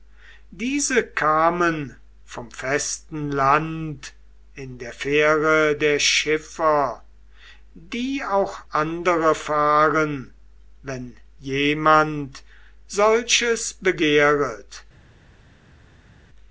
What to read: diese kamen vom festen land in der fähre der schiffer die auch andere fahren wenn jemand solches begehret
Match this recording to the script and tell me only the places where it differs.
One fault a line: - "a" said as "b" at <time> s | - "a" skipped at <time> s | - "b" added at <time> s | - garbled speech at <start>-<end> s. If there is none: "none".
none